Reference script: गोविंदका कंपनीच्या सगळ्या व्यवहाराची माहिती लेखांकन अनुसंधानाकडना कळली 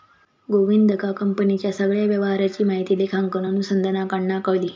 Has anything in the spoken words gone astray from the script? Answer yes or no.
no